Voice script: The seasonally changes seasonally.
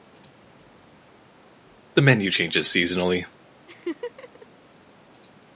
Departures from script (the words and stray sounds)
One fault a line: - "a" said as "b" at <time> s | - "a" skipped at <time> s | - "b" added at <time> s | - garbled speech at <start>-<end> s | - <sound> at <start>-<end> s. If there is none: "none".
- "seasonally" said as "menu" at 2.0 s
- laugh at 3.7-4.5 s